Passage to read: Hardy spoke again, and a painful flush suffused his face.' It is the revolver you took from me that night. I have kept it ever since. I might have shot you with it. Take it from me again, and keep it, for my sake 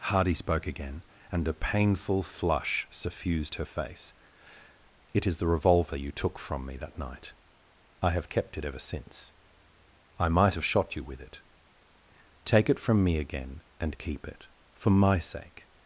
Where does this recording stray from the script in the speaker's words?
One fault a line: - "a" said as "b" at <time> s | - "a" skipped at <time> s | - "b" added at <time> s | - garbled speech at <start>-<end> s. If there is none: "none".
- "his" said as "her" at 3.5 s